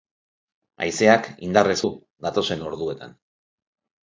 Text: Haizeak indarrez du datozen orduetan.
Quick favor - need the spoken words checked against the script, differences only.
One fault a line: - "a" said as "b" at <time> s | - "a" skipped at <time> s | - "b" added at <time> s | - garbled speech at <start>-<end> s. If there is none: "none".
none